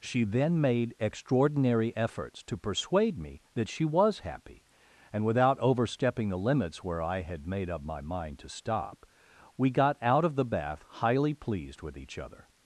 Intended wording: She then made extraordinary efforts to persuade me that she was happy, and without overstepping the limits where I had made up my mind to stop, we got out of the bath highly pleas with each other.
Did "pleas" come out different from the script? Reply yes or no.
yes